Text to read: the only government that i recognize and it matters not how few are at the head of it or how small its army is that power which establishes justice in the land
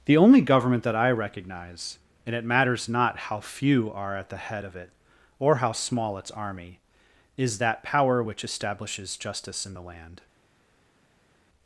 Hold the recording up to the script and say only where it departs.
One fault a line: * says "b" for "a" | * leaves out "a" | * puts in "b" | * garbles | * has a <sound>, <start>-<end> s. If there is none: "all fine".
all fine